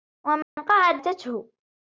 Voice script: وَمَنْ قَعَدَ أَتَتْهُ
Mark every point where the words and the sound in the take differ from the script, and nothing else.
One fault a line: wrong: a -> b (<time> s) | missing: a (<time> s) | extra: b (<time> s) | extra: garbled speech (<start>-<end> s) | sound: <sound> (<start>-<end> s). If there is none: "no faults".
sound: dropout (0.4-0.6 s)